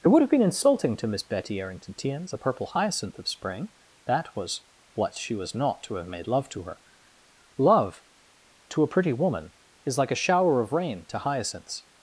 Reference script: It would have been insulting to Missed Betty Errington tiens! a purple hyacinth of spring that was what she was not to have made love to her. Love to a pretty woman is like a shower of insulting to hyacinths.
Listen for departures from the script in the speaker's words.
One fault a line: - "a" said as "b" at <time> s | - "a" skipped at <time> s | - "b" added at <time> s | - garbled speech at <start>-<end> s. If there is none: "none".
- "Missed" said as "Miss" at 1.1 s
- "insulting" said as "rain" at 10.7 s